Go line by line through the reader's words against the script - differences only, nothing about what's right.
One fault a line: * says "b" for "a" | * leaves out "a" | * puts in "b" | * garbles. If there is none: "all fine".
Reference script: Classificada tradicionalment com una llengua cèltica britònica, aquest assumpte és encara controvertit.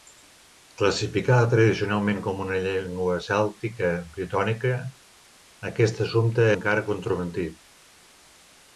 * leaves out "és"